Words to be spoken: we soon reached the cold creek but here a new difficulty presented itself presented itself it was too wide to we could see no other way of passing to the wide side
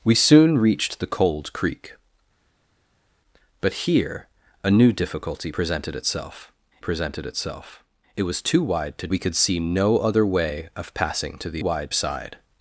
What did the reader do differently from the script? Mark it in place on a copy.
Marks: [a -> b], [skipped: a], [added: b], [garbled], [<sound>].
we soon reached the cold creek but here a new difficulty presented itself presented itself it was too wide to we could see no other way of passing to the wide side